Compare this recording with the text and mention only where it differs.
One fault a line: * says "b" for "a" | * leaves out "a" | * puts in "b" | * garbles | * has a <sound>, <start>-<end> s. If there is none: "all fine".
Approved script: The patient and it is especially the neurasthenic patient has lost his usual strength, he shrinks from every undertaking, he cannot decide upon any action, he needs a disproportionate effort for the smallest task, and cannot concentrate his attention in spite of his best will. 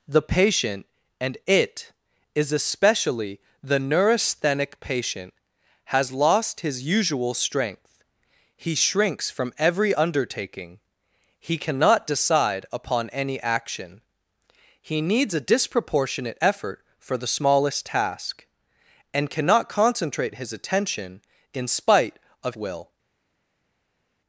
* leaves out "his best"